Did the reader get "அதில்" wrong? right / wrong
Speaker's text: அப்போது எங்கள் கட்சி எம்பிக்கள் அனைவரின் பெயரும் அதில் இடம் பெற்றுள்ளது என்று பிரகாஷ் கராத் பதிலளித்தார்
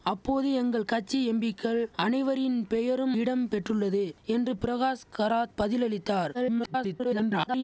wrong